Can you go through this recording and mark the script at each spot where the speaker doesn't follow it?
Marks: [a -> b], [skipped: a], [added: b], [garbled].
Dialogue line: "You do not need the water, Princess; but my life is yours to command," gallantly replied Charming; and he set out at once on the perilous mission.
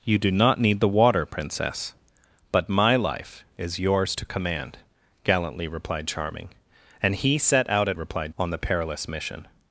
"You do not need the water, Princess; but my life is yours to command," gallantly replied Charming; and he set out at [once -> replied] on the perilous mission.